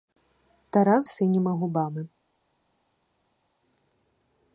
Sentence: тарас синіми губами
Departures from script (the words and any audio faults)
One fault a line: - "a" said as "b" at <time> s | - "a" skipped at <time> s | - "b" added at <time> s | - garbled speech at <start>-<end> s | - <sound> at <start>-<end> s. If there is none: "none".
none